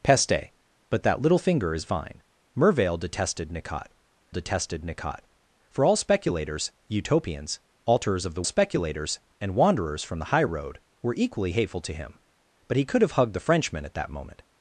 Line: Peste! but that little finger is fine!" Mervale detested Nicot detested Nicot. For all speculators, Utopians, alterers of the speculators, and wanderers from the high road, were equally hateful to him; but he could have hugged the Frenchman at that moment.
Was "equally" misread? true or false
false